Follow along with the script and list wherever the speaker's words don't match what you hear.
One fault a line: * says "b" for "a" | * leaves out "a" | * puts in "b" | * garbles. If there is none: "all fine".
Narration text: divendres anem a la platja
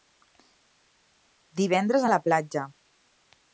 * leaves out "anem"